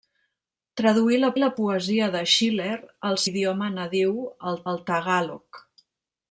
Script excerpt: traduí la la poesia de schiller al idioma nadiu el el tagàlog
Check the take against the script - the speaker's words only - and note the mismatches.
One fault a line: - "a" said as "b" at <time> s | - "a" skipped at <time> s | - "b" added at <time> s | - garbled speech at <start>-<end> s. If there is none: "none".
none